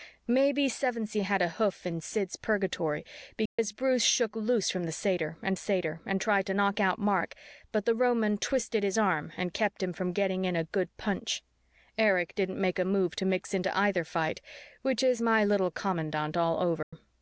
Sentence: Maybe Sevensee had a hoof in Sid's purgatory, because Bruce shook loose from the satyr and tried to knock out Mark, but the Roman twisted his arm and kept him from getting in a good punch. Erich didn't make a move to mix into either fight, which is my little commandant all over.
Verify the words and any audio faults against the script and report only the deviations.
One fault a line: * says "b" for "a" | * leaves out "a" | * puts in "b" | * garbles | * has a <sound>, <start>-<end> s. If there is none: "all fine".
* has a dropout, 3.5-3.6 s
* puts in "satyr and"
* has a dropout, 16.8-16.9 s